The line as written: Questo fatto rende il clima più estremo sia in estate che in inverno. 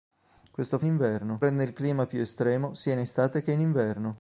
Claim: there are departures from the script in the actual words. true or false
true